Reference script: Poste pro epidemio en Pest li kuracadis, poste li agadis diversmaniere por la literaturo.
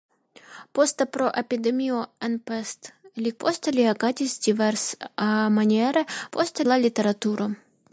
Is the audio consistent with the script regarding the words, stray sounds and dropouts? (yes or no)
no